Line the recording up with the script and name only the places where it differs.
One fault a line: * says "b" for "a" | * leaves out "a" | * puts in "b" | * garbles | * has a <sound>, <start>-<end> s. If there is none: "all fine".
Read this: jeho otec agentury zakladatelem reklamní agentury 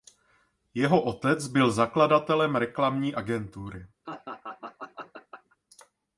* says "byl" for "agentury"
* has a laugh, 4.0-5.6 s